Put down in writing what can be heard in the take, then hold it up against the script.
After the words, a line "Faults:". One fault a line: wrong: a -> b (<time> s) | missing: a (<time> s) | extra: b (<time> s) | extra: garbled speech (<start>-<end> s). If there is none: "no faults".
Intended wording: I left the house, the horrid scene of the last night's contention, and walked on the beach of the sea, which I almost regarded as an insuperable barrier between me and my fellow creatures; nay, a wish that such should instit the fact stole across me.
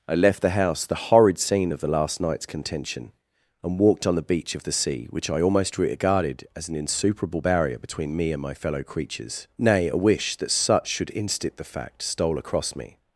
I left the house, the horrid scene of the last night's contention, and walked on the beach of the sea, which I almost regarded as an insuperable barrier between me and my fellow creatures; nay, a wish that such should instit the fact stole across me.
Faults:
no faults